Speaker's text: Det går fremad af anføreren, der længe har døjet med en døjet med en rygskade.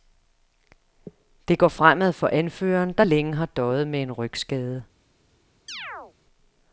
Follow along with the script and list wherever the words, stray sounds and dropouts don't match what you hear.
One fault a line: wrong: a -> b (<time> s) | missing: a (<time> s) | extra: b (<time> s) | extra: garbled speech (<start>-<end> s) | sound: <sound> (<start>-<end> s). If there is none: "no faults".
wrong: af -> for (2.1 s)
missing: døjet med en (4.1 s)
sound: chirp (5.7-6.1 s)